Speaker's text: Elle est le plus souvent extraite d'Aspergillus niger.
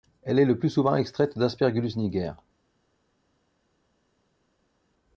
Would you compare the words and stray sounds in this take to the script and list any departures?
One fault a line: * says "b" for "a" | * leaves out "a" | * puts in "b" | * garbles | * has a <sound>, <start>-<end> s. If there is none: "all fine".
all fine